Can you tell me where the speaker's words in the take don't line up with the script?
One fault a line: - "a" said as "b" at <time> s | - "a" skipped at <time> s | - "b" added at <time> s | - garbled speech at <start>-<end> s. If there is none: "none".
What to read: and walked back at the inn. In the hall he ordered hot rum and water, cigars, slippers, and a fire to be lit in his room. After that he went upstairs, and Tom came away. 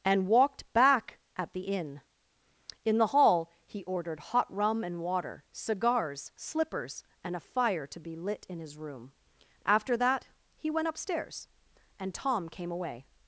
none